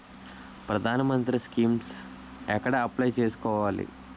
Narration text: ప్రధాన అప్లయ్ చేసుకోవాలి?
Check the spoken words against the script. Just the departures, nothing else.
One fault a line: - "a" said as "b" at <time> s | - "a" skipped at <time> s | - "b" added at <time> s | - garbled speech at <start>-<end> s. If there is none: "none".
- "మంత్రి స్కీమ్స్ ఎక్కడ" added at 1.0 s